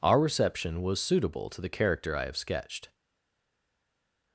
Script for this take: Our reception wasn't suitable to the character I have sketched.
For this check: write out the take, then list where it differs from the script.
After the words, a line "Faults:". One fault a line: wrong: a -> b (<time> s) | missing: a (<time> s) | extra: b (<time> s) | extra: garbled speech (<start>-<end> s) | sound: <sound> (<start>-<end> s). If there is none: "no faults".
Our reception was suitable to the character I have sketched.
Faults:
wrong: wasn't -> was (0.8 s)